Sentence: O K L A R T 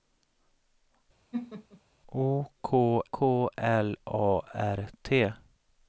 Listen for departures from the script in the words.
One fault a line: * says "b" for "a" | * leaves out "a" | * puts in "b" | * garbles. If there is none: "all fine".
* puts in "K"